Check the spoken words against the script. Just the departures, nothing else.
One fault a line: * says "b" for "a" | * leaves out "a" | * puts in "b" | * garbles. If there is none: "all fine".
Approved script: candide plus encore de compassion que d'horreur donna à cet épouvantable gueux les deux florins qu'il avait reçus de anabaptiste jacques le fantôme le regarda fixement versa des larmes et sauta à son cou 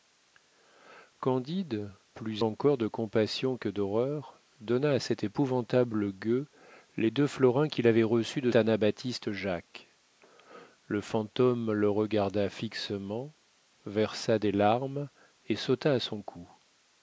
all fine